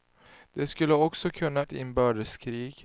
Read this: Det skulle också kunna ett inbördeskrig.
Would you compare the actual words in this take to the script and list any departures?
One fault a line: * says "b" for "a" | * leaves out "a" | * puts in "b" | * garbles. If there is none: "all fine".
all fine